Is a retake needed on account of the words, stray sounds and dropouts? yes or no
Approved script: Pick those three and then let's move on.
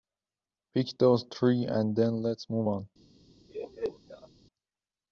yes